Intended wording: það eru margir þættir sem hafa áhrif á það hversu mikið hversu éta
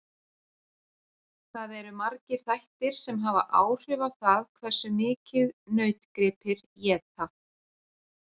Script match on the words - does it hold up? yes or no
no